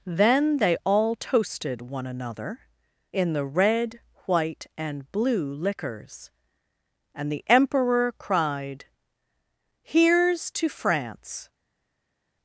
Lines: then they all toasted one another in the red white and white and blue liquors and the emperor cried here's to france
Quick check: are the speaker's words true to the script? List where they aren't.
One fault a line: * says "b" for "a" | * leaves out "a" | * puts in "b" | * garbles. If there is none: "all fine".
* leaves out "white and"